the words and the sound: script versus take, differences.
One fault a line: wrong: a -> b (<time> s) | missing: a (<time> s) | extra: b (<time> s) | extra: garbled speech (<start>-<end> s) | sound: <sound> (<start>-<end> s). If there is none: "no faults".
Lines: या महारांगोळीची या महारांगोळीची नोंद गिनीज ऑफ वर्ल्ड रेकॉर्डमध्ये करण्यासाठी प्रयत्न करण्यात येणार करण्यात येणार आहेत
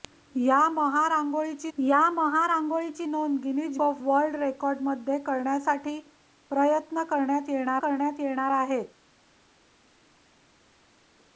no faults